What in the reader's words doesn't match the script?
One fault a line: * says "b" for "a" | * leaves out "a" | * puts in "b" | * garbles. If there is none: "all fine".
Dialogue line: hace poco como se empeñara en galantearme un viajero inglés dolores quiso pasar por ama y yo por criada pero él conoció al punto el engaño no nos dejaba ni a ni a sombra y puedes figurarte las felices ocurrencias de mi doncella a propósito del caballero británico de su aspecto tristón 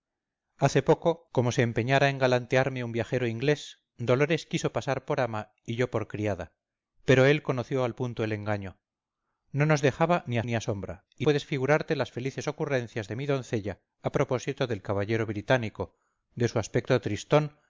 all fine